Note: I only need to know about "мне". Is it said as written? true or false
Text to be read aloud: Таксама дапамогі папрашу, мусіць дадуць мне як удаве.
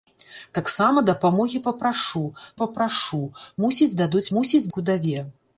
false